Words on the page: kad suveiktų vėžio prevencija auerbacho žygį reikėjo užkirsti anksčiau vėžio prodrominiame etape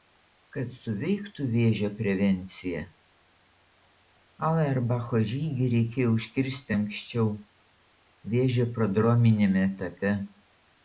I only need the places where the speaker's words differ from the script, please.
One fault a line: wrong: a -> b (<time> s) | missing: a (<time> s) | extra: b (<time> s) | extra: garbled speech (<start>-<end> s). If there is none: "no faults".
no faults